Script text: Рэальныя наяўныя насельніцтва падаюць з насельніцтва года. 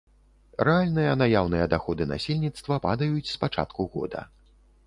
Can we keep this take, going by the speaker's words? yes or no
no